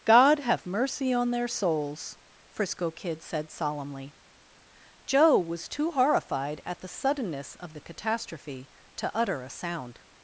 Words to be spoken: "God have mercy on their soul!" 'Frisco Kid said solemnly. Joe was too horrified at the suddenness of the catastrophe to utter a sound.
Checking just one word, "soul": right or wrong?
wrong